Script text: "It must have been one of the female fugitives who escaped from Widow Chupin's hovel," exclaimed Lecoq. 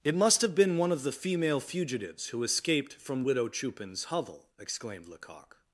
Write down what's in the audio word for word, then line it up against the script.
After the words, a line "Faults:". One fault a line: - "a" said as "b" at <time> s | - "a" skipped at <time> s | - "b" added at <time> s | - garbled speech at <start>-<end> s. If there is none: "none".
"It must have been one of the female fugitives who escaped from Widow Chupin's hovel," exclaimed Lecoq.
Faults:
none